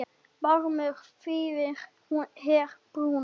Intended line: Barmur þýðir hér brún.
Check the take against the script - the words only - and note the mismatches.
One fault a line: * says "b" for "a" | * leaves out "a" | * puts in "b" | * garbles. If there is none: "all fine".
all fine